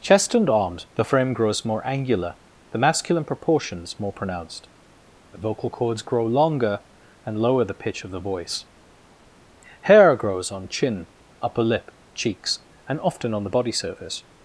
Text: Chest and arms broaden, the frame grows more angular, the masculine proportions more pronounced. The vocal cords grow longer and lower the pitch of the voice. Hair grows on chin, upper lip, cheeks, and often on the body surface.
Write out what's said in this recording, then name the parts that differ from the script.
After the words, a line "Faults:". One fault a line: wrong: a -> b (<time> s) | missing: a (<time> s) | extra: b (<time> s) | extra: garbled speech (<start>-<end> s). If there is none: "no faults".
Chest and arms the frame grows more angular, the masculine proportions more pronounced. The vocal cords grow longer and lower the pitch of the voice. Hair grows on chin, upper lip, cheeks, and often on the body surface.
Faults:
missing: broaden (0.9 s)